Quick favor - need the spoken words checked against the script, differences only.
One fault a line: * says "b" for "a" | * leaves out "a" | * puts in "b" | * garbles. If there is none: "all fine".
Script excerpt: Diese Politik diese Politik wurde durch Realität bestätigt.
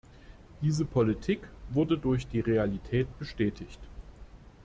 * leaves out "diese Politik"
* puts in "die"